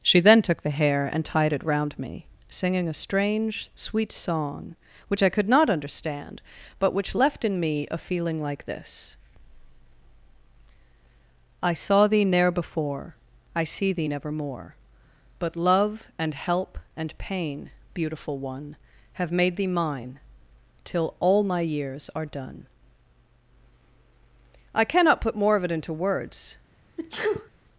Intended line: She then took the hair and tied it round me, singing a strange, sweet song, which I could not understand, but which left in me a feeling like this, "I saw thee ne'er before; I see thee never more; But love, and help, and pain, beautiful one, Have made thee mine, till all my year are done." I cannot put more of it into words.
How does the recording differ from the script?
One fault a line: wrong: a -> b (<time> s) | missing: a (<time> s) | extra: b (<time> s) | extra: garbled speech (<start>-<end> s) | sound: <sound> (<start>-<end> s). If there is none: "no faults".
wrong: year -> years (21.6 s)
sound: sneeze (27.0-27.5 s)